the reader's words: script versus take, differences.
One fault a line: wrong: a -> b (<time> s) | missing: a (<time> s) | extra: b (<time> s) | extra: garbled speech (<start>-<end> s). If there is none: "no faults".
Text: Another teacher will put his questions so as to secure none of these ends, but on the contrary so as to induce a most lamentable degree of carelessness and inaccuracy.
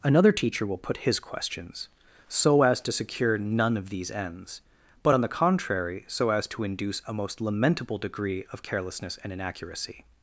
no faults